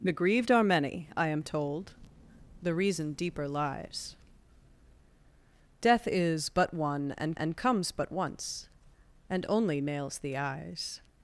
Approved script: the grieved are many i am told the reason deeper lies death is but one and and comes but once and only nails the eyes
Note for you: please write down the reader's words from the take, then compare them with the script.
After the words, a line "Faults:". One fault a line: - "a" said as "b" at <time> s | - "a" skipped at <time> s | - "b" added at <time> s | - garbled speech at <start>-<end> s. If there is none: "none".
the grieved are many i am told the reason deeper lies death is but one and and comes but once and only nails the eyes
Faults:
none